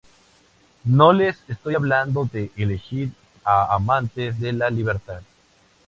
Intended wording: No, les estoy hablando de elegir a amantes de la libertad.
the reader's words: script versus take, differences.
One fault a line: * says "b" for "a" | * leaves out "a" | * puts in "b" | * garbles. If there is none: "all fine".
all fine